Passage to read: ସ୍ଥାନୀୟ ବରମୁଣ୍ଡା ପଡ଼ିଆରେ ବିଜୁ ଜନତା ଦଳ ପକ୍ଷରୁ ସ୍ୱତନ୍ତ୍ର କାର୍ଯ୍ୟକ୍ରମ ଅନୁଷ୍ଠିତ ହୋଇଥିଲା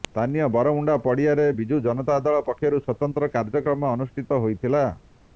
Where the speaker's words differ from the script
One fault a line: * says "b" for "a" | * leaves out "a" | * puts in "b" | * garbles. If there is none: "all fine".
all fine